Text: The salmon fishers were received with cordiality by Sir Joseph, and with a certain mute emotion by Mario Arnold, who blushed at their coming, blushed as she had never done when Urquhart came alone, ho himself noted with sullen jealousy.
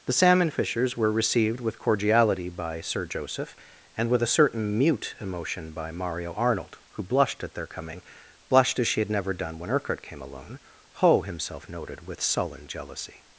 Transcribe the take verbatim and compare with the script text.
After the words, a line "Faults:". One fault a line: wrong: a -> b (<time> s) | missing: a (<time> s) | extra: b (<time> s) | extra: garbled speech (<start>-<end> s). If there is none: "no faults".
The salmon fishers were received with cordiality by Sir Joseph, and with a certain mute emotion by Mario Arnold, who blushed at their coming, blushed as she had never done when Urquhart came alone, ho himself noted with sullen jealousy.
Faults:
no faults